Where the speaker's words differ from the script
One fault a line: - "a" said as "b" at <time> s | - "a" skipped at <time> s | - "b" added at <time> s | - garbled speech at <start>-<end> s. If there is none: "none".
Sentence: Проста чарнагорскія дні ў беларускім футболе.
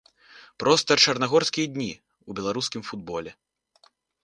none